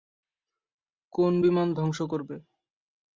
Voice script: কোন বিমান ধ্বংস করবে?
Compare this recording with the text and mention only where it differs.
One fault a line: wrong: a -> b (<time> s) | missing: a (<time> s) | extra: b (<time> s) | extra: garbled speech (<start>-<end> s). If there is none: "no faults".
no faults